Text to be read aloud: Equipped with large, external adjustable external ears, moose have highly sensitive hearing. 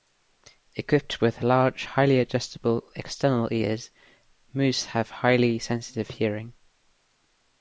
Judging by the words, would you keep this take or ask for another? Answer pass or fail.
fail